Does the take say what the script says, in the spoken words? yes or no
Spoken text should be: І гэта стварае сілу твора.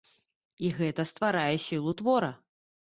yes